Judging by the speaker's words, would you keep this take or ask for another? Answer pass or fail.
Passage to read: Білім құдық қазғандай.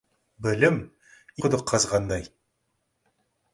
pass